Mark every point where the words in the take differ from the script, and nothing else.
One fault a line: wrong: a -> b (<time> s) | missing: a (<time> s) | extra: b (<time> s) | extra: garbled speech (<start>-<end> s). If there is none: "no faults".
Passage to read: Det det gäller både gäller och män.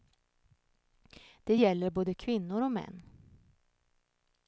missing: det (1.6 s)
wrong: gäller -> kvinnor (2.1 s)